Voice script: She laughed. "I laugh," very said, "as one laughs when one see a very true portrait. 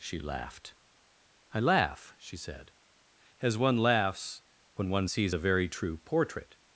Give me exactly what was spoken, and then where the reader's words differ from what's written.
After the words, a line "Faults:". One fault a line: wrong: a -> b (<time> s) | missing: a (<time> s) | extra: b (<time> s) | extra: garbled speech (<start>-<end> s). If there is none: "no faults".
She laughed. "I laugh," she said, "as one laughs when one sees a very true portrait.
Faults:
wrong: very -> she (2.2 s)
wrong: see -> sees (5.1 s)